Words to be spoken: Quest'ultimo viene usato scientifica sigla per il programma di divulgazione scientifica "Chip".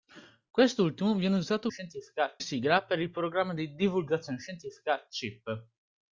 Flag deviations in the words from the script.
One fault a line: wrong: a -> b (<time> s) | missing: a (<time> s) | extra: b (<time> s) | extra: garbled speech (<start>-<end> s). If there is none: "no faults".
no faults